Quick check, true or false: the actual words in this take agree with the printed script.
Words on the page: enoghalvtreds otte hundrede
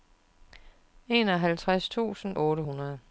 false